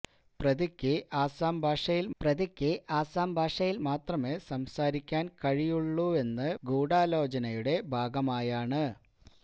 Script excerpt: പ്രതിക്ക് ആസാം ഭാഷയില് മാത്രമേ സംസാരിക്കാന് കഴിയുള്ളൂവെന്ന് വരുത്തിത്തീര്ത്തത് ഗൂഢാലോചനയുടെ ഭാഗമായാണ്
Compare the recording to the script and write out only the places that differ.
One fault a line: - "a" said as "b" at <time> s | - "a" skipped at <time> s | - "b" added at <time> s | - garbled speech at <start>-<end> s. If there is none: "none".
- "പ്രതിക്ക് ആസാം ഭാഷയില്" added at 2.2 s
- "വരുത്തിത്തീര്ത്തത്" skipped at 6.5 s